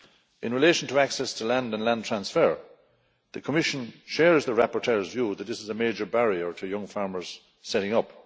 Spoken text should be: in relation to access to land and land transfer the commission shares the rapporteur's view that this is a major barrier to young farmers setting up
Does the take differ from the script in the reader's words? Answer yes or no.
no